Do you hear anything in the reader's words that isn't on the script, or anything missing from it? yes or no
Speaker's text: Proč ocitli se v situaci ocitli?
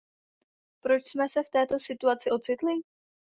yes